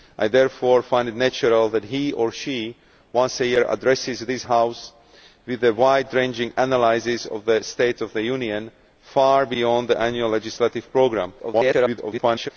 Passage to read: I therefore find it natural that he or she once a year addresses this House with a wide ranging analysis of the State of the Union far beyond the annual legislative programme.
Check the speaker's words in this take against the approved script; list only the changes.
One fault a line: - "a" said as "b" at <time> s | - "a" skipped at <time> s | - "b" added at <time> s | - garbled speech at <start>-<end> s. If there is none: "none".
- garbled speech at 11.4-12.5 s